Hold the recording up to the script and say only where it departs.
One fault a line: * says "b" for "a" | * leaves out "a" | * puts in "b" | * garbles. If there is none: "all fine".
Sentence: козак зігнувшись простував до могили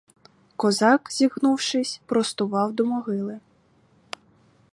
all fine